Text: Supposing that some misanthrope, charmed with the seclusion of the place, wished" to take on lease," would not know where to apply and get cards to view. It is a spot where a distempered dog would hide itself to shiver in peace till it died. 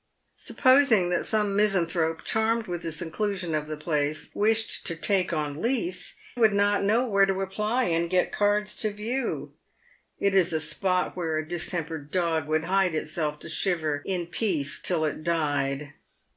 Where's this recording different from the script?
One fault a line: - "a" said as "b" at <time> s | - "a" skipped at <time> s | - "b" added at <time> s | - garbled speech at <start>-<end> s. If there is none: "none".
none